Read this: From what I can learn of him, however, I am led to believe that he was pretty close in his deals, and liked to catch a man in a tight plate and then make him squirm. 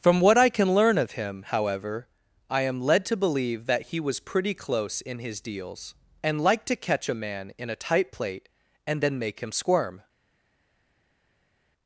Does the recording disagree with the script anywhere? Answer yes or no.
no